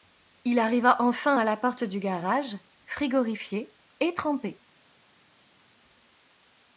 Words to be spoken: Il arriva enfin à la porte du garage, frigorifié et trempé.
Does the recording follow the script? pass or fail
pass